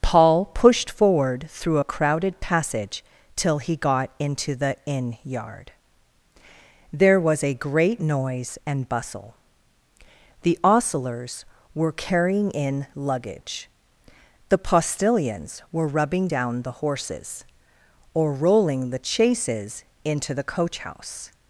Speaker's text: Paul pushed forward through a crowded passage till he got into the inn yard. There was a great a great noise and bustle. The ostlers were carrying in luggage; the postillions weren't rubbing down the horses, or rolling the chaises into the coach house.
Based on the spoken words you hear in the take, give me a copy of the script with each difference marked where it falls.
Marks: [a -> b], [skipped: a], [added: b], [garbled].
Paul pushed forward through a crowded passage till he got into the inn yard. There was a great [skipped: a great] noise and bustle. The ostlers were carrying in luggage; the postillions [weren't -> were] rubbing down the horses, or rolling the chaises into the coach house.